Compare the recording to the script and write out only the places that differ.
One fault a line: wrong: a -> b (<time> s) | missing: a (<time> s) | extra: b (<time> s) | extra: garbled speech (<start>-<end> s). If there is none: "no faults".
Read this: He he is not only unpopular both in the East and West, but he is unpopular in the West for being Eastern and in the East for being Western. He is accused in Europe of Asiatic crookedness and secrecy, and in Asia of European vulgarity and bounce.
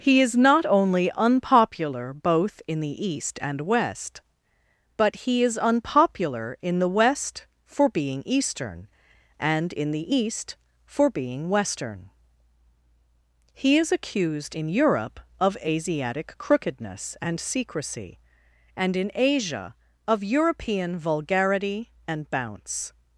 missing: he (0.2 s)